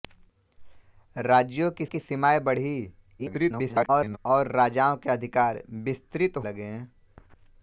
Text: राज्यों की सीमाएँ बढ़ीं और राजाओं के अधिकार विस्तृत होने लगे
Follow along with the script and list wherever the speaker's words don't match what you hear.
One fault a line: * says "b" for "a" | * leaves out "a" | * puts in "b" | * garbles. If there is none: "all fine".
* puts in "की"
* garbles
* leaves out "होने"